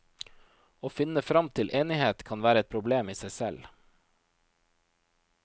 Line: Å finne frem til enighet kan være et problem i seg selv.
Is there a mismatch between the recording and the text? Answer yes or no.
no